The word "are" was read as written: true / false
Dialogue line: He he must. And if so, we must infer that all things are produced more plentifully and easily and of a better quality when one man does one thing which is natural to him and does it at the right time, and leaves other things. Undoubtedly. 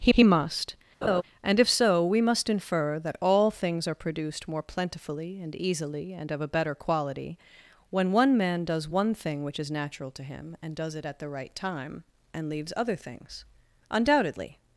true